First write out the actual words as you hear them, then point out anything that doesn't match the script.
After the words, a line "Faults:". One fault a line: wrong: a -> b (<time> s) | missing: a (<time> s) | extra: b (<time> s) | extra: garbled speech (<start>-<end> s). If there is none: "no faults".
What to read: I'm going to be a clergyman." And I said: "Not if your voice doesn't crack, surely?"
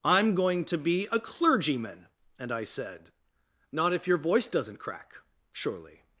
I'm going to be a clergyman." And I said: "Not if your voice doesn't crack, surely?"
Faults:
no faults